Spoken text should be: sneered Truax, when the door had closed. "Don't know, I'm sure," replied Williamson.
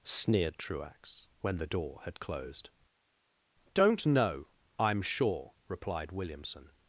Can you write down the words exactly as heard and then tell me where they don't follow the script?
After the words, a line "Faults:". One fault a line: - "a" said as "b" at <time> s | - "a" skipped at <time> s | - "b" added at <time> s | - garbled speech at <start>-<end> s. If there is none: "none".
sneered Truax, when the door had closed. "Don't know, I'm sure," replied Williamson.
Faults:
none